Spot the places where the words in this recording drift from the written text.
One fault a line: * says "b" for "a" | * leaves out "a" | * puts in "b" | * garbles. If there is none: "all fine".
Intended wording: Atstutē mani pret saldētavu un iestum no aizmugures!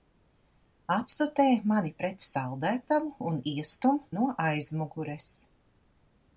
all fine